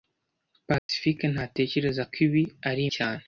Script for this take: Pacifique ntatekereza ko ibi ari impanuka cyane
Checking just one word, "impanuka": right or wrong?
wrong